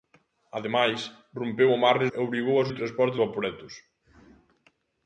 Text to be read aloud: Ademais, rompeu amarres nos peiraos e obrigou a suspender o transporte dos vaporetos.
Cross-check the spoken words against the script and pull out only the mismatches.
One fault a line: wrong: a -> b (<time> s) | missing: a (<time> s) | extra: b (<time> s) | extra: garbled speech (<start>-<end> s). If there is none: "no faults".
missing: nos peiraos (2.1 s)
missing: suspender (2.7 s)
missing: dos (3.2 s)